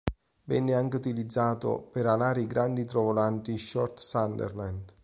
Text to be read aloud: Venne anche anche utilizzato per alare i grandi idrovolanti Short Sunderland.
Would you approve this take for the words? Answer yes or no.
no